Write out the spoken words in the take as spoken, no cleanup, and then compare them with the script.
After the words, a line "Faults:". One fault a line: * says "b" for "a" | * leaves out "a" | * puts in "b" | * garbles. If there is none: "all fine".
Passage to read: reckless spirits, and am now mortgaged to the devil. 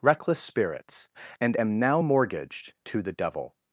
reckless spirits, and am now mortgaged to the devil.
Faults:
all fine